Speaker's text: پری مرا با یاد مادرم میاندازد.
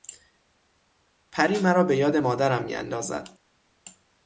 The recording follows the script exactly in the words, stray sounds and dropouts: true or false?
false